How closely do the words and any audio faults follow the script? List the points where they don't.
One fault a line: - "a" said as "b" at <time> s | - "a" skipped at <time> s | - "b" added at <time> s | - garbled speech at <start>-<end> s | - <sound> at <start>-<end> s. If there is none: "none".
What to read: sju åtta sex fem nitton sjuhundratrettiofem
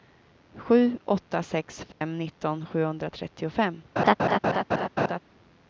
- dropout at 1.9-2.0 s
- laugh at 4.0-5.2 s